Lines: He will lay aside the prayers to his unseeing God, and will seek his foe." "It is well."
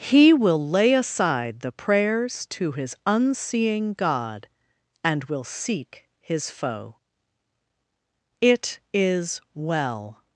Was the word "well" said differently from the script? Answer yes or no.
no